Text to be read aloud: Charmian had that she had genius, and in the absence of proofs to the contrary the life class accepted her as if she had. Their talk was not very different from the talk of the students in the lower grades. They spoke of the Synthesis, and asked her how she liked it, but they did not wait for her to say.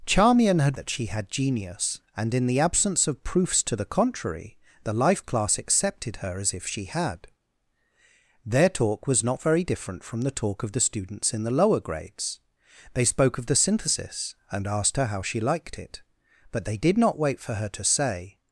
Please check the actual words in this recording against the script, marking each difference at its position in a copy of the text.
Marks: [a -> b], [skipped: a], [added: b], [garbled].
Charmian had that she had genius, and in the absence of proofs to the contrary the life class accepted her as if she had. Their talk was not very different from the talk of the students in the lower grades. They spoke of the Synthesis, and asked her how she liked it, but they did not wait for her to say.